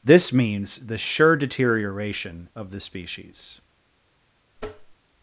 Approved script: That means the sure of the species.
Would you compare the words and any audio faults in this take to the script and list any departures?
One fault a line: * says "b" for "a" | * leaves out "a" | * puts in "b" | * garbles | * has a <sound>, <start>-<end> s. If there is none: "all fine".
* says "This" for "That"
* puts in "deterioration"
* has a tap, 4.6-5.0 s